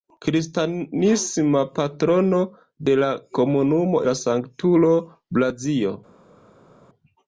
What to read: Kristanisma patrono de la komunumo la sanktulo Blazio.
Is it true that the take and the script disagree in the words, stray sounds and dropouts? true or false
false